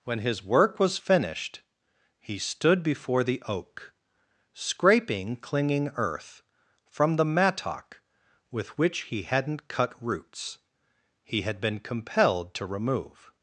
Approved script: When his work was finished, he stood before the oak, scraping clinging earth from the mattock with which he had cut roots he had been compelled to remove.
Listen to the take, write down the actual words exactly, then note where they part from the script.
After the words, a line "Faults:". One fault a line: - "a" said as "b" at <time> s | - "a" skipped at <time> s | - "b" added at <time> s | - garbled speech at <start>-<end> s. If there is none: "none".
When his work was finished, he stood before the oak, scraping clinging earth from the mattock with which he hadn't cut roots he had been compelled to remove.
Faults:
- "had" said as "hadn't" at 9.2 s